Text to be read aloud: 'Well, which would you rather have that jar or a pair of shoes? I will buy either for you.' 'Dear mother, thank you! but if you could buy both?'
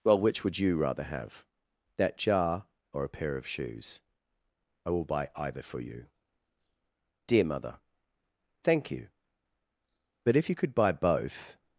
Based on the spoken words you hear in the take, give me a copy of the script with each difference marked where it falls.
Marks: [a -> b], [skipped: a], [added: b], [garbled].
'Well, which would you rather have that jar or a pair of shoes? I will buy either for you.' 'Dear mother, thank you! but if you could buy both?'